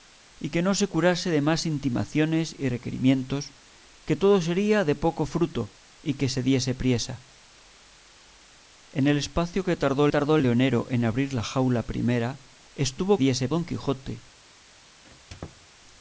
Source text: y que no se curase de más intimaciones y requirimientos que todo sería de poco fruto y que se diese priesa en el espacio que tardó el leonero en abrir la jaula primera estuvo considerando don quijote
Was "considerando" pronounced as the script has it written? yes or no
no